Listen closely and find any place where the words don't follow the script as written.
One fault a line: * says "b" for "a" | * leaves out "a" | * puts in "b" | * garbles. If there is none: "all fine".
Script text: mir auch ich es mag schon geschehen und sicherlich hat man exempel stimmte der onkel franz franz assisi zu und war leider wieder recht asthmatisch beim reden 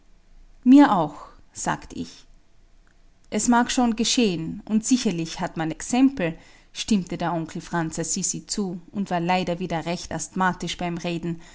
* puts in "sagt"
* leaves out "franz"